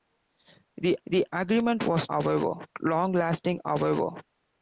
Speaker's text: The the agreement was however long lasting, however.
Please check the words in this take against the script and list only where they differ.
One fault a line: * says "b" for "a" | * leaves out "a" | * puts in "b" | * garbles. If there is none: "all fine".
all fine